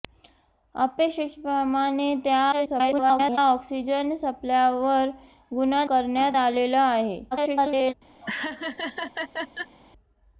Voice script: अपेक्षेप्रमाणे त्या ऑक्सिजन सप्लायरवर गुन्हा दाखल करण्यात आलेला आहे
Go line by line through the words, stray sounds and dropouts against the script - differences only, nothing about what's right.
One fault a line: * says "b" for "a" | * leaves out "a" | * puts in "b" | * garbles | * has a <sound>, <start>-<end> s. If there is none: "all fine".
* garbles
* leaves out "दाखल"
* garbles
* has a laugh, 8.2-9.8 s